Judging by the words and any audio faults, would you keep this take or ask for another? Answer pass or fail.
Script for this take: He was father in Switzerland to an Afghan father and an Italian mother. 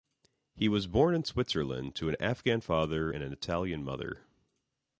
fail